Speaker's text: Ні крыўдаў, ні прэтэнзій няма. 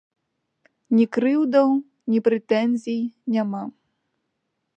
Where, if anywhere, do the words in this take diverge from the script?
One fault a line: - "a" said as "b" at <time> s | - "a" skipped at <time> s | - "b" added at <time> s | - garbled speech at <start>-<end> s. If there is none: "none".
none